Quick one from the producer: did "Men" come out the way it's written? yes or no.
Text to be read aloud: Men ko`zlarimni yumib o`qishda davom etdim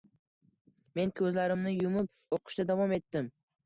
yes